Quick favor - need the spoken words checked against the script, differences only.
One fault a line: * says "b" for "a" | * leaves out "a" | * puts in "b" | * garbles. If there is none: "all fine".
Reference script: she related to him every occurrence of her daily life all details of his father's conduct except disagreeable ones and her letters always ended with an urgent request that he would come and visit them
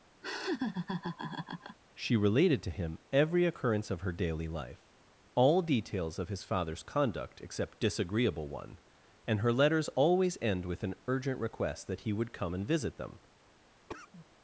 * says "one" for "ones"
* says "end" for "ended"